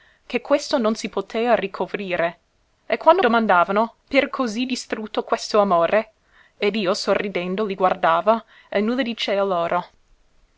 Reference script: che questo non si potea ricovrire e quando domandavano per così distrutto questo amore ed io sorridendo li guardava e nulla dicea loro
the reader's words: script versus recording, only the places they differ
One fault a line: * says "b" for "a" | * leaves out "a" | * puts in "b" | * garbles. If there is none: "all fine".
all fine